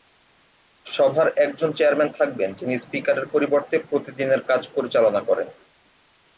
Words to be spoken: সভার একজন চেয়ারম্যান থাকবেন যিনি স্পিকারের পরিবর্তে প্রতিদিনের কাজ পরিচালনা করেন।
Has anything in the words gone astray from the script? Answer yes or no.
no